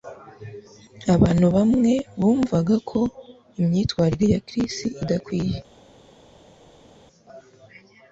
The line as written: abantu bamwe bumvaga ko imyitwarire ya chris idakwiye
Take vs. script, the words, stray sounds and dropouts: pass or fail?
pass